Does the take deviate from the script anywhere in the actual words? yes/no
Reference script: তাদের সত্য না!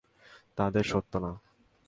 no